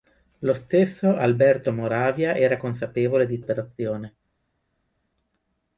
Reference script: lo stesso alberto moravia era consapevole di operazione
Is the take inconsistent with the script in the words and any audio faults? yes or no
no